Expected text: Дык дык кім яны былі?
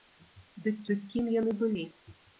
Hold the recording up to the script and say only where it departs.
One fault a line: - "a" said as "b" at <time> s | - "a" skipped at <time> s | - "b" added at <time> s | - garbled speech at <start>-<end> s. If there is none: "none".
none